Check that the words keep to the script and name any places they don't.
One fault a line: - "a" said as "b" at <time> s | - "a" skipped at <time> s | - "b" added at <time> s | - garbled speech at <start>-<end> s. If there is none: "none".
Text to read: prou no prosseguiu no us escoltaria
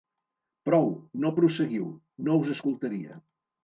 none